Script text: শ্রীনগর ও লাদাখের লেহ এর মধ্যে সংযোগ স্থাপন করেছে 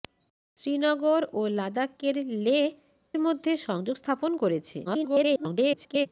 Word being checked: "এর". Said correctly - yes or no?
no